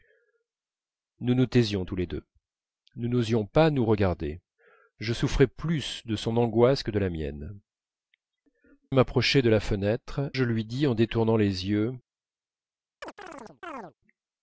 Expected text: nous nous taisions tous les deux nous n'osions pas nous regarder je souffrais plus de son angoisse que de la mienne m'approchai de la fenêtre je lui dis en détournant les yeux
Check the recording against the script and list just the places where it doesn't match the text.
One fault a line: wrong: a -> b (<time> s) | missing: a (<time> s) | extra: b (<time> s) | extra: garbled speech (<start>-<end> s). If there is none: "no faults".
no faults